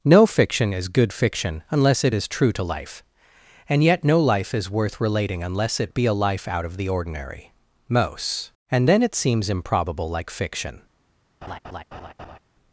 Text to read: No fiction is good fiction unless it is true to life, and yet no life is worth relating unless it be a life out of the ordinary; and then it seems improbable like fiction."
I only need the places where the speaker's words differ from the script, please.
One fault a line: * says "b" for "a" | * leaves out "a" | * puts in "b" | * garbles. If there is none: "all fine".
* puts in "most"